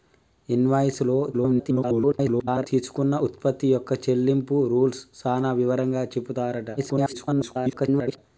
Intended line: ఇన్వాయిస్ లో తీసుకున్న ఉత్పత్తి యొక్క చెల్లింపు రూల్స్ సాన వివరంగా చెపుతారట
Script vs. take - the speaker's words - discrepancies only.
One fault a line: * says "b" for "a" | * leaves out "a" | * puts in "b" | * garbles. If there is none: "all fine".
* garbles
* garbles